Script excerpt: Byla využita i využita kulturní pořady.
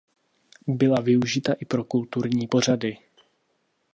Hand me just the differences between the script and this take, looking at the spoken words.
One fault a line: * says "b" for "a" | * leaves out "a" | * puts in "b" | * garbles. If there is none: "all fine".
* says "pro" for "využita"